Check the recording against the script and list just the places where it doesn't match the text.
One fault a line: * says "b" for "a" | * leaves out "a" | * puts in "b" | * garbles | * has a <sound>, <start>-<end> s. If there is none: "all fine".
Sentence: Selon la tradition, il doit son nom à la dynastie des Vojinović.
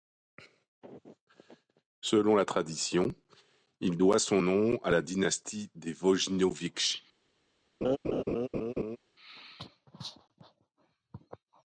* has a laugh, 7.8-9.0 s